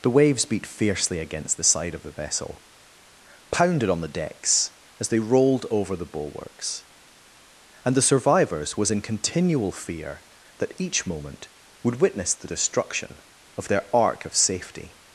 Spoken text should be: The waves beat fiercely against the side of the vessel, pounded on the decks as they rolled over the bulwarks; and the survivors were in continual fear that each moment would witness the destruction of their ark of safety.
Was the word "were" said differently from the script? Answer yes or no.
yes